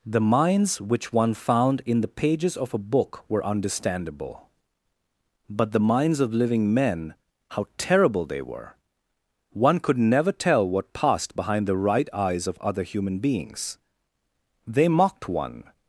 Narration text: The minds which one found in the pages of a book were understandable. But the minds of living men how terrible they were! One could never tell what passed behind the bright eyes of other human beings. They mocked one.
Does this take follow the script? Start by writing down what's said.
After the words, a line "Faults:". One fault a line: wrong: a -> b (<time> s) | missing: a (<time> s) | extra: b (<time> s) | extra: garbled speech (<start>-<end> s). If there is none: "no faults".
The minds which one found in the pages of a book were understandable. But the minds of living men how terrible they were! One could never tell what passed behind the right eyes of other human beings. They mocked one.
Faults:
wrong: bright -> right (11.8 s)